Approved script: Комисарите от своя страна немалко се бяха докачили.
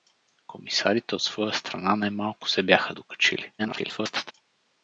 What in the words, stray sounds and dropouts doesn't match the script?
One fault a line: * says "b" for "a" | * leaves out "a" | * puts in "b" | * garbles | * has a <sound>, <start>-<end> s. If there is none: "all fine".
* garbles